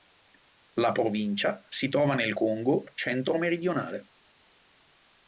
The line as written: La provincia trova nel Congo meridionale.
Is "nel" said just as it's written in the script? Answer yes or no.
yes